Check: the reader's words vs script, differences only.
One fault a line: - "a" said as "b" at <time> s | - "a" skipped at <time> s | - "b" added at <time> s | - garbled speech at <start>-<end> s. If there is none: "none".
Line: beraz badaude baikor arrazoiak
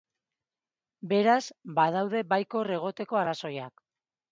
- "egoteko" added at 2.8 s